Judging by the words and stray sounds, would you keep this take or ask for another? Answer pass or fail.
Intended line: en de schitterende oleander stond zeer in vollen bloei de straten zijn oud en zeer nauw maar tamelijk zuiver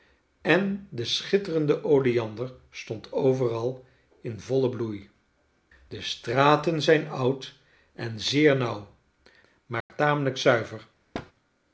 fail